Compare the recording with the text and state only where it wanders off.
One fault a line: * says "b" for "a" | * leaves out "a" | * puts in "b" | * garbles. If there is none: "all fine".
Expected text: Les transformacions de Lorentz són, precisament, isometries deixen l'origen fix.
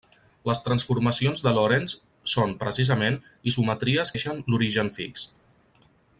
all fine